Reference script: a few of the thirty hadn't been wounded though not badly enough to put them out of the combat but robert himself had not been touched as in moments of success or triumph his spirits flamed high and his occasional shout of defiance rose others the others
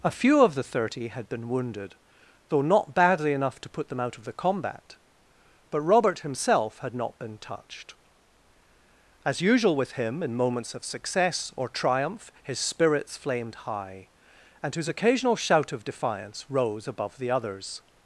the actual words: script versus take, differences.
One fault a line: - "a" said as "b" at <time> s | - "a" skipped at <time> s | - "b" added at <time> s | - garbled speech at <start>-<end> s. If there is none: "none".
- "hadn't" said as "had" at 1.1 s
- "usual with him" added at 9.4 s
- "others" said as "above" at 16.9 s